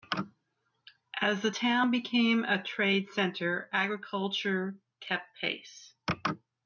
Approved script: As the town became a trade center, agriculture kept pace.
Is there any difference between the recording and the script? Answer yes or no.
no